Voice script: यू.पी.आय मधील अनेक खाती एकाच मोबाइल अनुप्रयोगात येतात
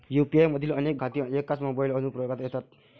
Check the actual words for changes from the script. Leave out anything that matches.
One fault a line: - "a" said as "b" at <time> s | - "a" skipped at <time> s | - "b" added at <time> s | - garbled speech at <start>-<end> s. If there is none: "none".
none